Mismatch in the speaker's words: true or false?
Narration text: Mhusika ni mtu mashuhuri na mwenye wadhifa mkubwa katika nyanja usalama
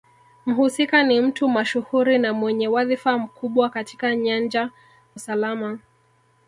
false